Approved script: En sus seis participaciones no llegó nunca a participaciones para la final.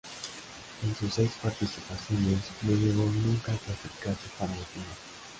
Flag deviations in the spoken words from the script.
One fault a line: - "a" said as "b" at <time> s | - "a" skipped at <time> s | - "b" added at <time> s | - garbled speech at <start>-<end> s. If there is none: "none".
- "participaciones" said as "clasificarse" at 3.6 s